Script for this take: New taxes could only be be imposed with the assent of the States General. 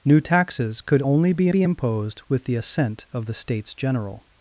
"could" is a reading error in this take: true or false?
false